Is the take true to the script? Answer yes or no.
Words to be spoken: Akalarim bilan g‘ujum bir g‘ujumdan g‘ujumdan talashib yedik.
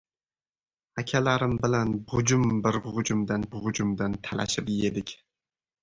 yes